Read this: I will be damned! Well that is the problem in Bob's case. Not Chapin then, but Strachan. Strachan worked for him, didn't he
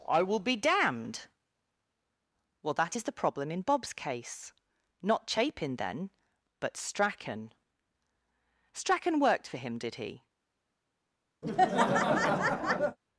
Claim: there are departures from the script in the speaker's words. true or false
true